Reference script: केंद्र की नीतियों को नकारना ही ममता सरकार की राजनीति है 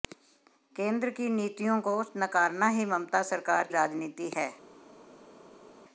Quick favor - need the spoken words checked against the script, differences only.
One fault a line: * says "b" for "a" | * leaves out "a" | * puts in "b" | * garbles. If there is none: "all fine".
* leaves out "की"